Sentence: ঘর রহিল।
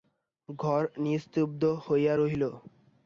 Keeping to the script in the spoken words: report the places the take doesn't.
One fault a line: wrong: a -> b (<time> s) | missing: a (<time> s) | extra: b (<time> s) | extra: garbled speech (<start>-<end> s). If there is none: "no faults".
extra: নিস্তব্ধ হইয়া (1.0 s)